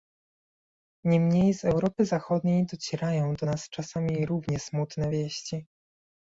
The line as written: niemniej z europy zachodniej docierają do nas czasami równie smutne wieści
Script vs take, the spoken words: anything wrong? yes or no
no